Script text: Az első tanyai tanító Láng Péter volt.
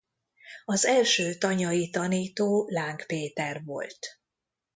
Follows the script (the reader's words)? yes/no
yes